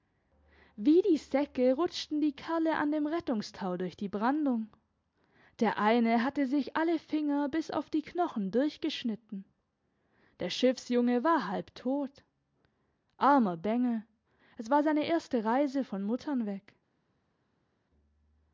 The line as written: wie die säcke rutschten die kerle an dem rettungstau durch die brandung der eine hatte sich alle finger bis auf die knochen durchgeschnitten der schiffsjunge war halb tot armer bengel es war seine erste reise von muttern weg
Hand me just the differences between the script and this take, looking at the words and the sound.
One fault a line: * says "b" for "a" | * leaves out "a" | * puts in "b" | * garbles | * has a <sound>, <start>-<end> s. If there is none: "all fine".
all fine